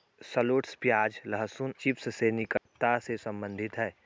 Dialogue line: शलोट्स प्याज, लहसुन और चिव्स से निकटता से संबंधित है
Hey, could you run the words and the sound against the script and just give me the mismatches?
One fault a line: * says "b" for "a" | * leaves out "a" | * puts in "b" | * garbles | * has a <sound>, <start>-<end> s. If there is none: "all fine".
* leaves out "और"
* has a dropout, 2.6-2.7 s